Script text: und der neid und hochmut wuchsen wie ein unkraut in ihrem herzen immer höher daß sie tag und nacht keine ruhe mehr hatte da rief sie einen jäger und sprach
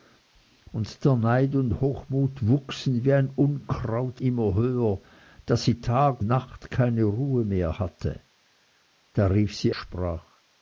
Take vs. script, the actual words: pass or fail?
fail